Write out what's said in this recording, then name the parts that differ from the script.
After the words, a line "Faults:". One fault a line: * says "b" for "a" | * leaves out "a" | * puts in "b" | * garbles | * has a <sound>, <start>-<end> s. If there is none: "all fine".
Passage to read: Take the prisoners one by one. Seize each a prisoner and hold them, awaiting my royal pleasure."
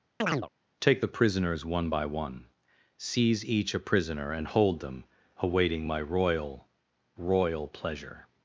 Take the prisoners one by one. Seize each a prisoner and hold them, awaiting my royal royal pleasure."
Faults:
* has a chirp, 0.2-0.5 s
* puts in "royal"